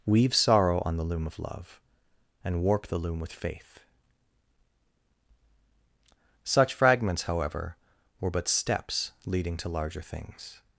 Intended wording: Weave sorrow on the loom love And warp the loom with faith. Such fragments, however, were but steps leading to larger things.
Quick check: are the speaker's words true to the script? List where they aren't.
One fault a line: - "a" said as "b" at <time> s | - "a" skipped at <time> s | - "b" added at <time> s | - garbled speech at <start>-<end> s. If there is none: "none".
- "of" added at 1.3 s